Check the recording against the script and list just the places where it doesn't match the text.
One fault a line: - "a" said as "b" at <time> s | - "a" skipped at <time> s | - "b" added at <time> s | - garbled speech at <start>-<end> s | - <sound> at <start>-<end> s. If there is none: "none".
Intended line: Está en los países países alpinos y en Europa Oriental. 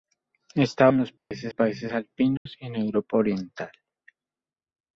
- dropout at 1.2-1.3 s
- dropout at 2.4-2.5 s